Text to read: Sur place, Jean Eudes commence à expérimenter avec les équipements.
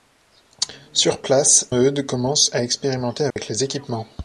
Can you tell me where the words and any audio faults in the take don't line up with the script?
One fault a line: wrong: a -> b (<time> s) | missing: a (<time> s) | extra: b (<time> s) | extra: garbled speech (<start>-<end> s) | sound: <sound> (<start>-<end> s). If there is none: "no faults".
missing: Jean (1.7 s)
sound: dropout (3.3-3.4 s)